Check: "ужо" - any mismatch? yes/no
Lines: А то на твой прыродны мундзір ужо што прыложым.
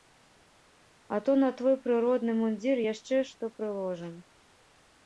yes